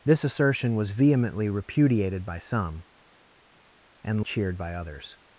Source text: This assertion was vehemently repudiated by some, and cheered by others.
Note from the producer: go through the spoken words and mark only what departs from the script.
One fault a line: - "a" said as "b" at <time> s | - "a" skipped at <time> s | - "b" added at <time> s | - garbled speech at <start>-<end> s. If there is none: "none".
none